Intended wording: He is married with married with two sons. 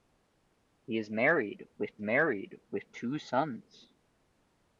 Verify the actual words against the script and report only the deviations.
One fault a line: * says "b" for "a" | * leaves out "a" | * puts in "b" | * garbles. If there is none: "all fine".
all fine